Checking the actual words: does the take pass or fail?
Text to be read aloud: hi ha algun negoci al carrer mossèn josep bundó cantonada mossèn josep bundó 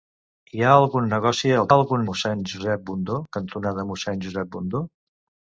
fail